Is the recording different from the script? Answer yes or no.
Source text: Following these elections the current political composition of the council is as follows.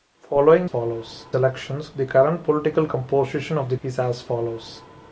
yes